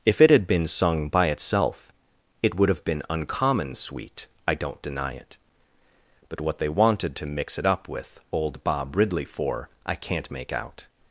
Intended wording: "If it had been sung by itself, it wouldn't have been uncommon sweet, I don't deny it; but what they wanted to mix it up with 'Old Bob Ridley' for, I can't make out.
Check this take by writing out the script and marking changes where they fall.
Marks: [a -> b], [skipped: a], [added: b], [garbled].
"If it had been sung by itself, it [wouldn't -> would] have been uncommon sweet, I don't deny it; but what they wanted to mix it up with 'Old Bob Ridley' for, I can't make out.